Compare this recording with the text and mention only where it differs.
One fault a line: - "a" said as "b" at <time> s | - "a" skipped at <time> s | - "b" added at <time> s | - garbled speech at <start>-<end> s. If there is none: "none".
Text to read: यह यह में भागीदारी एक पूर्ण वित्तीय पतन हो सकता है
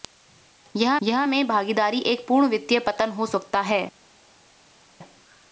none